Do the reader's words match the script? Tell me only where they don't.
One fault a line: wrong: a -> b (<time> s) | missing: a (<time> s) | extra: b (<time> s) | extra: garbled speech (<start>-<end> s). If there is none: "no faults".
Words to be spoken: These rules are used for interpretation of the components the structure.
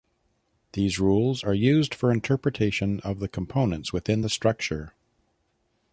extra: within (3.9 s)